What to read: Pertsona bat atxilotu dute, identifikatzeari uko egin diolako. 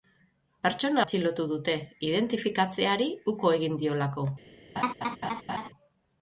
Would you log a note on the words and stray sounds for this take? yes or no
yes